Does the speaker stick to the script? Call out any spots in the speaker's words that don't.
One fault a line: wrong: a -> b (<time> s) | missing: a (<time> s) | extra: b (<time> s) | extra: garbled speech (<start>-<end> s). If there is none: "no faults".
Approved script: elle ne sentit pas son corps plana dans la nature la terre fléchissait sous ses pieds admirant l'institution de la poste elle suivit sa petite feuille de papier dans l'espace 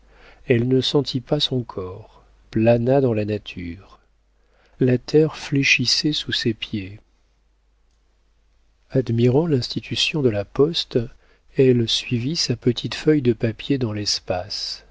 no faults